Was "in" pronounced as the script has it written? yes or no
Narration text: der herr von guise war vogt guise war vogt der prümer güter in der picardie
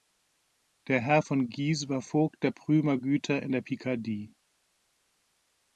yes